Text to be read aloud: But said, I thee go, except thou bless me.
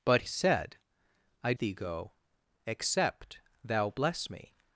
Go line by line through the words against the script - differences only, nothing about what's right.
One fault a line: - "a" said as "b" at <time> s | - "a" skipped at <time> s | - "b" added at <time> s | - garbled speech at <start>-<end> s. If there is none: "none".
none